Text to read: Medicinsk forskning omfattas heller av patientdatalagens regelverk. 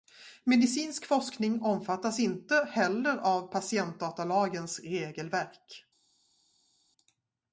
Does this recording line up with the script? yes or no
no